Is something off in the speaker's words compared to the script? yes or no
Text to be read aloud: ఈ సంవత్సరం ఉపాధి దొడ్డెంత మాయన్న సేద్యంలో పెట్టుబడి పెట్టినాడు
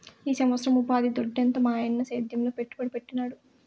no